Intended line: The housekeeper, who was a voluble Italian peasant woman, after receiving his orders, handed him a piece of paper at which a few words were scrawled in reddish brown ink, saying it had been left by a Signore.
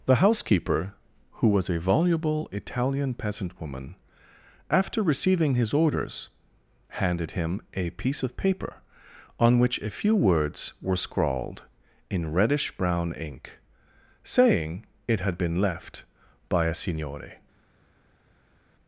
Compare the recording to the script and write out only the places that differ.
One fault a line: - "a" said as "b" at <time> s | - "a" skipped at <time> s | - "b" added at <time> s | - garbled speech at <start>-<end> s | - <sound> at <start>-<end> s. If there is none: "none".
- "at" said as "on" at 9.4 s